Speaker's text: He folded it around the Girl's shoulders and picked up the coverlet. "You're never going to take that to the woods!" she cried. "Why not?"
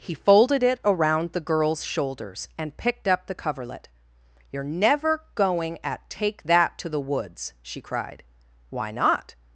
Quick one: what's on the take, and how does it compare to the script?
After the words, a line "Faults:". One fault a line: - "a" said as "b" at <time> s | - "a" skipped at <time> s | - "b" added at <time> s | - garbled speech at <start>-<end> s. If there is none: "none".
He folded it around the Girl's shoulders and picked up the coverlet. "You're never going at take that to the woods!" she cried. "Why not?"
Faults:
- "to" said as "at" at 5.8 s